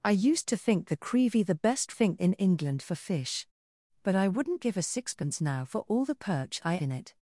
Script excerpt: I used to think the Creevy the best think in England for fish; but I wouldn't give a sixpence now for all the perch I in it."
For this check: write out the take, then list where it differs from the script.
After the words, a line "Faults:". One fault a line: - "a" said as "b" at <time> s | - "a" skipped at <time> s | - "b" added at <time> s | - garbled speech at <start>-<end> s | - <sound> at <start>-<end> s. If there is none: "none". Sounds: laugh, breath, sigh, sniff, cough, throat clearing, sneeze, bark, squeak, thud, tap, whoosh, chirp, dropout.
I used to think the Creevy the best think in England for fish; but I wouldn't give a sixpence now for all the perch I in it."
Faults:
none